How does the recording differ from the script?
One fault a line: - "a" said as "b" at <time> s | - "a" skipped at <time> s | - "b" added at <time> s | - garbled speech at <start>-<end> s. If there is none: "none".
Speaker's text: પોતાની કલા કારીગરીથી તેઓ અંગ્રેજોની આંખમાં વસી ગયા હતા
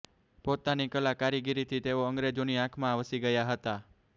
none